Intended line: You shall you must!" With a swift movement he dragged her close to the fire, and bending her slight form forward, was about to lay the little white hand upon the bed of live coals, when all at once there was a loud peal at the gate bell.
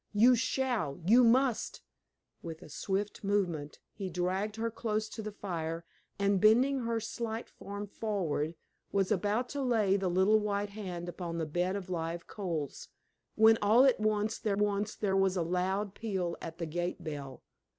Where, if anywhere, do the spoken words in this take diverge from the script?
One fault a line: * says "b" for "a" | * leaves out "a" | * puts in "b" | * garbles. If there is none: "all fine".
* puts in "once there"